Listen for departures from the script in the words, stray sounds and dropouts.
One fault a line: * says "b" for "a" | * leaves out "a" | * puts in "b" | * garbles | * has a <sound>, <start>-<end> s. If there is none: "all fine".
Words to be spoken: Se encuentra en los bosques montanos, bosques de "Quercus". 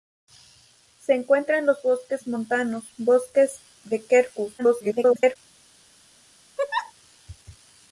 * garbles
* has a laugh, 6.6-6.9 s